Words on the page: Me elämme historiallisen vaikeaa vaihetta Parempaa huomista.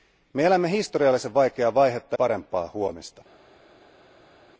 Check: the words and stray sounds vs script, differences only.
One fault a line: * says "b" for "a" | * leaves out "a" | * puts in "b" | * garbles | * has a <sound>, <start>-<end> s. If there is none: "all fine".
all fine